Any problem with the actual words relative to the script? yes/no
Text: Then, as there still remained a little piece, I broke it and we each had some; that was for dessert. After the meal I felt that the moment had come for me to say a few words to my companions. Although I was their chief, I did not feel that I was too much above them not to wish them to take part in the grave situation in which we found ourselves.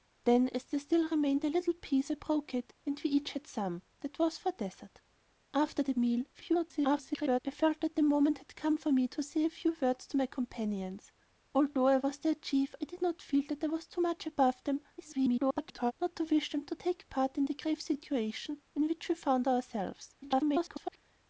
yes